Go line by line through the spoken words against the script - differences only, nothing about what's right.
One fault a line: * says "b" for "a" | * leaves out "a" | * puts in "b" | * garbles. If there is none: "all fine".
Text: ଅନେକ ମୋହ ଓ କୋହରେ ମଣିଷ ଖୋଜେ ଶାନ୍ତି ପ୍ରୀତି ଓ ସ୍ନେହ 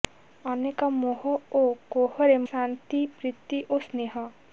* leaves out "ମଣିଷ ଖୋଜେ"